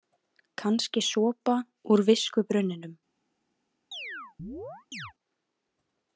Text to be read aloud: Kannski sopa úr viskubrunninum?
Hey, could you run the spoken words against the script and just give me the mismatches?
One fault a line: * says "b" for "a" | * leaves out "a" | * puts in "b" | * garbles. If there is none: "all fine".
all fine